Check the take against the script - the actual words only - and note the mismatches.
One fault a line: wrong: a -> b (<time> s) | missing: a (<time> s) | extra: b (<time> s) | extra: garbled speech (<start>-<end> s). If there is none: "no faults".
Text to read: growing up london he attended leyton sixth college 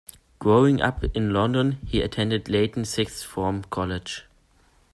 extra: in (1.1 s)
extra: form (3.2 s)